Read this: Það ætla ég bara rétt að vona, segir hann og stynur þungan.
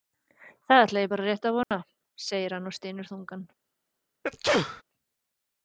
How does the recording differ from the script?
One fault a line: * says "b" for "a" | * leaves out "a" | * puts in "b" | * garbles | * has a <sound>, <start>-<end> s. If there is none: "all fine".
* has a dropout, 1.6-1.7 s
* has a sneeze, 4.2-4.8 s